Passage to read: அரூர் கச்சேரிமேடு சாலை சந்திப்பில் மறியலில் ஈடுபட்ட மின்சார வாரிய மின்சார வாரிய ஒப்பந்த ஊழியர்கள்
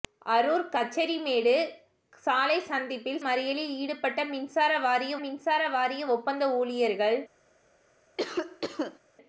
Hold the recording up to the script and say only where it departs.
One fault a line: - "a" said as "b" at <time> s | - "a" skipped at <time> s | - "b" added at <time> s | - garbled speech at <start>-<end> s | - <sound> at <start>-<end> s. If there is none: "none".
- cough at 8.2-9.0 s